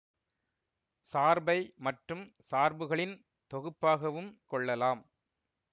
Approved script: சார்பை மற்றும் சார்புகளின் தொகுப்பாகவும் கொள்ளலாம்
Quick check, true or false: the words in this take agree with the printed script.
true